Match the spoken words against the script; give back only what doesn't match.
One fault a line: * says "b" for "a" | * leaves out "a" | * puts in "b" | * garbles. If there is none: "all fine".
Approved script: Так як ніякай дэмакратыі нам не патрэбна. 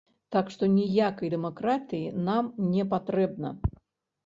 * says "што" for "як"